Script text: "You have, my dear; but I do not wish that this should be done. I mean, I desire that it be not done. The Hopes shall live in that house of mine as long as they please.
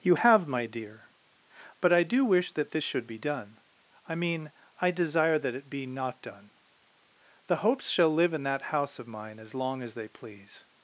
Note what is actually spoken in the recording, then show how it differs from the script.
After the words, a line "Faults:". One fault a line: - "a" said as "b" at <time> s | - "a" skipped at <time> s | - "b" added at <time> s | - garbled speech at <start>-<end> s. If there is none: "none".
"You have, my dear; but I do wish that this should be done. I mean, I desire that it be not done. The Hopes shall live in that house of mine as long as they please.
Faults:
- "not" skipped at 2.2 s